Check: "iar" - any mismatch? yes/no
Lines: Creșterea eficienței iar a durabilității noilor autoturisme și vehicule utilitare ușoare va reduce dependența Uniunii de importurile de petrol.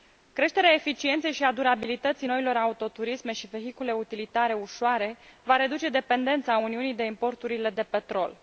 yes